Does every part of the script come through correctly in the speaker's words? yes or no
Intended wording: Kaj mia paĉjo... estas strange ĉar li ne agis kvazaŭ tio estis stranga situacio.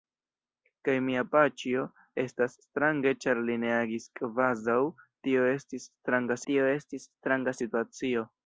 no